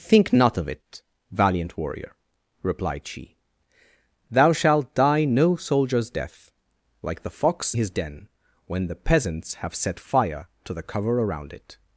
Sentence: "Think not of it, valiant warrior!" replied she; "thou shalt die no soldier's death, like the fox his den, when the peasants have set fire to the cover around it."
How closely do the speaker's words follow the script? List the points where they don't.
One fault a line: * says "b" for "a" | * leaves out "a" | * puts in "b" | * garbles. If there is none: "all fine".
all fine